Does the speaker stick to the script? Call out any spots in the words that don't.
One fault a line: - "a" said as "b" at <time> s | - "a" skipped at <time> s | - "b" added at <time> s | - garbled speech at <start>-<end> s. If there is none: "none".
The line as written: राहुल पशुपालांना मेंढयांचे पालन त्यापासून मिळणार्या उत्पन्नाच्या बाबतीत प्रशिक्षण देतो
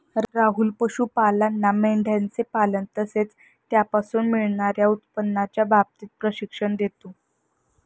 - "तसेच" added at 3.0 s